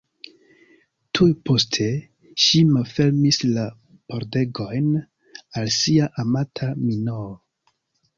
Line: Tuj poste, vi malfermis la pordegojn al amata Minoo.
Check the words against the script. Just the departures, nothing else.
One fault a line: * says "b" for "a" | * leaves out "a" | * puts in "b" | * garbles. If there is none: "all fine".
* says "ŝi" for "vi"
* puts in "sia"